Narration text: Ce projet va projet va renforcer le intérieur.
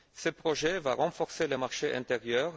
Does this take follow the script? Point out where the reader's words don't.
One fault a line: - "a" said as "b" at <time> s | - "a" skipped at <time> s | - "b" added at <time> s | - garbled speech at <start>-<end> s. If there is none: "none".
- "projet va" skipped at 0.9 s
- "marché" added at 1.6 s